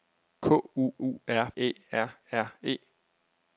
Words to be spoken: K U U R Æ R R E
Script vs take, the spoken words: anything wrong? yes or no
no